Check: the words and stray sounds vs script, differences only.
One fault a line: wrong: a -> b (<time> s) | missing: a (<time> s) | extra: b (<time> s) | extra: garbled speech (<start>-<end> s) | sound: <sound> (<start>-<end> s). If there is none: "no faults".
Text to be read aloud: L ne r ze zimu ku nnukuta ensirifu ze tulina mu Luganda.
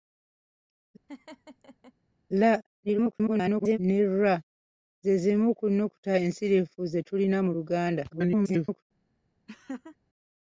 sound: laugh (1.1-1.9 s)
extra: garbled speech (2.9-3.8 s)
extra: garbled speech (8.1-8.8 s)
sound: laugh (9.5-10.0 s)